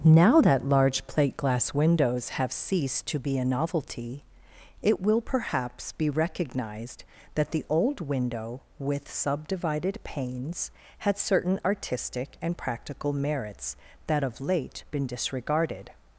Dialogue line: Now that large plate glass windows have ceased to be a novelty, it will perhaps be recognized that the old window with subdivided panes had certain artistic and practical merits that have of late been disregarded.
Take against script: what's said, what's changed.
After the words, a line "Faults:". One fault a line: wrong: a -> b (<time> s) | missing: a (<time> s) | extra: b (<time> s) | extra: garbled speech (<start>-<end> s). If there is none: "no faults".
Now that large plate glass windows have ceased to be a novelty, it will perhaps be recognized that the old window with subdivided panes had certain artistic and practical merits that of late been disregarded.
Faults:
missing: have (14.2 s)